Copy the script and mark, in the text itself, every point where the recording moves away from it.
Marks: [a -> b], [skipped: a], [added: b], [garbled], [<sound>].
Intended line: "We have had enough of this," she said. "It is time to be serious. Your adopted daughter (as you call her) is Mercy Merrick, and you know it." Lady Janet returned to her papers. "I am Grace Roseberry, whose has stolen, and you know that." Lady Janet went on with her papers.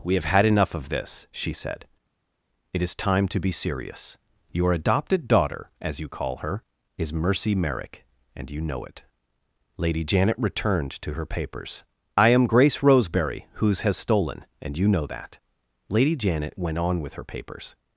"We have had enough of this," she said. "It is time to be serious. Your adopted daughter (as you call her) is Mercy Merrick, and you know it." Lady Janet returned to her papers. "I am Grace Roseberry, whose has stolen, and you know that." Lady Janet went on with her papers.